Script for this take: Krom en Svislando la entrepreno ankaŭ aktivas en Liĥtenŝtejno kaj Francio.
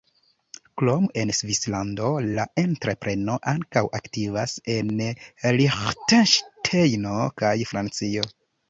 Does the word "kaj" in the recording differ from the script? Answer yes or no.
no